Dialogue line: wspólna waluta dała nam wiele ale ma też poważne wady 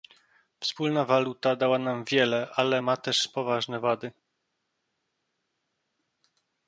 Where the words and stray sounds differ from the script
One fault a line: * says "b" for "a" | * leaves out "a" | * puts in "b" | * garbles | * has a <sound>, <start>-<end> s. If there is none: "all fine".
all fine